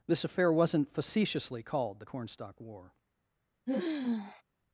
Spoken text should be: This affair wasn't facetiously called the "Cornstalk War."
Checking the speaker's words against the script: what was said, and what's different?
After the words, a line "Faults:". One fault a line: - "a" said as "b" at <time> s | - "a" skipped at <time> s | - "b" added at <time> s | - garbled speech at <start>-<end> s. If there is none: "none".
This affair wasn't facetiously called the "Cornstalk War."
Faults:
none